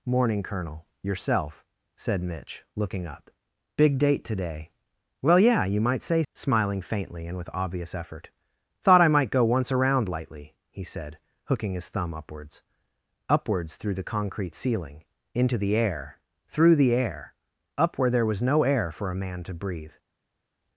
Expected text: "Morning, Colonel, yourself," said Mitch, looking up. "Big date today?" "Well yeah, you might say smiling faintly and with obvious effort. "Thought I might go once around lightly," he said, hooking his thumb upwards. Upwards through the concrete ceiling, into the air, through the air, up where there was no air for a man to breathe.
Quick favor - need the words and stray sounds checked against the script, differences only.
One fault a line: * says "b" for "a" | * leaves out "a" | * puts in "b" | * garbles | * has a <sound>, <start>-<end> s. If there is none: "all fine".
all fine